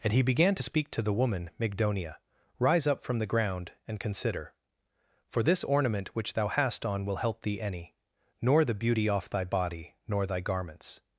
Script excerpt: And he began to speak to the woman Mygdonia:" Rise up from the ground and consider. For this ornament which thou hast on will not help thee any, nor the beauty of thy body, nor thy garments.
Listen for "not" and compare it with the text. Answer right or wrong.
wrong